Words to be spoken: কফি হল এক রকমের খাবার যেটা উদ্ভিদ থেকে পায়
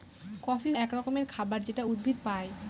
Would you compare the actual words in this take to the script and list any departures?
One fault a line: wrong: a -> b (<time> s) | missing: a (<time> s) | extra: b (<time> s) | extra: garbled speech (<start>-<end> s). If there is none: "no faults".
missing: হল (0.7 s)
missing: থেকে (2.2 s)